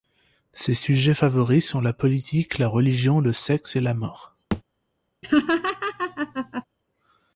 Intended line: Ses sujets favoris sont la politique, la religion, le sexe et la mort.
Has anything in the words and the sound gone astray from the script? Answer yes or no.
yes